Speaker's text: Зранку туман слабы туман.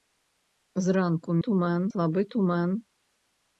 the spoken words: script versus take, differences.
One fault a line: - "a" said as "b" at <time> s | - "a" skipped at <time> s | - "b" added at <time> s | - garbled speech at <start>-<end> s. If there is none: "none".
none